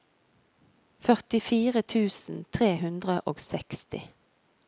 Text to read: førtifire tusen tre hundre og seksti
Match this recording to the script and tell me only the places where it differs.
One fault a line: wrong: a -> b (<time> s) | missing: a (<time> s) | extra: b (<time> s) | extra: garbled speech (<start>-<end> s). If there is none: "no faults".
no faults